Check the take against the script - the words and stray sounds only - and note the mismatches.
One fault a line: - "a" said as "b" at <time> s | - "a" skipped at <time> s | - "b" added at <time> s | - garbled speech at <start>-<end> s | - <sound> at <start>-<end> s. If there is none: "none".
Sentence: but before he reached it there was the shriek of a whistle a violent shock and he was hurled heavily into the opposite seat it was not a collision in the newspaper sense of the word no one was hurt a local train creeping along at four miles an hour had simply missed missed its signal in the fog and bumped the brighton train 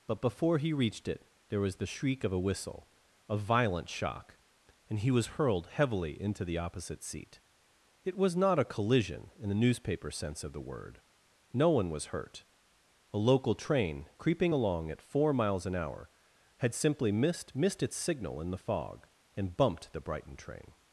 none